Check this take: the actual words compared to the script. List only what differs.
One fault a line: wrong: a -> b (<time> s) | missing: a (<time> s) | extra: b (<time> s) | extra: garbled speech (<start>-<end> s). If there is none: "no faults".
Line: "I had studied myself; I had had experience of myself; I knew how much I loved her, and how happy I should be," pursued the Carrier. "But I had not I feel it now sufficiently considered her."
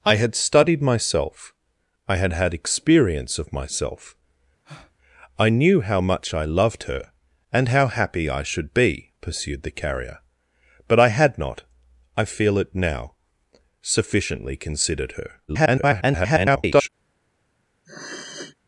extra: garbled speech (15.5-16.9 s)